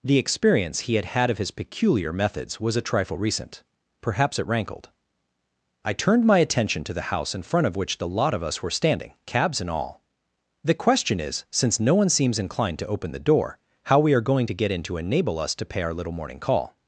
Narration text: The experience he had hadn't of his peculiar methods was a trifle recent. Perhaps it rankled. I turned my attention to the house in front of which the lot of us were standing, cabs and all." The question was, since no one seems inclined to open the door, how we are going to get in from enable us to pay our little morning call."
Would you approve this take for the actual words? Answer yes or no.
no